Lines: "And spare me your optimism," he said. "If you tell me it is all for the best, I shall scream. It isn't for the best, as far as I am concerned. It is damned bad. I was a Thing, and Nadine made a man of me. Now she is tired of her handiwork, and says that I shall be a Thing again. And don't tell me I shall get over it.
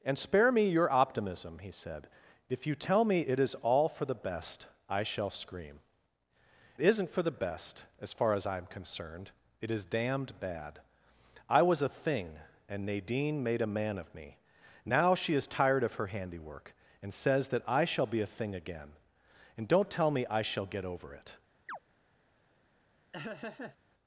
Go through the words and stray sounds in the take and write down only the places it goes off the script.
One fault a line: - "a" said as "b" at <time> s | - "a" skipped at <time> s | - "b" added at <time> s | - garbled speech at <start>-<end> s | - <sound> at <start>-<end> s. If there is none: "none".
- "It" skipped at 5.8 s
- chirp at 21.7-21.8 s
- laugh at 23.1-23.8 s